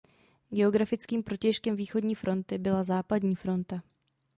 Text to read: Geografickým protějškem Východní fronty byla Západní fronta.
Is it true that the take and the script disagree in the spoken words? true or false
false